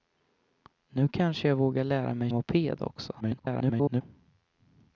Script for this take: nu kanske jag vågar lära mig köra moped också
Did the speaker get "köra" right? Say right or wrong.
wrong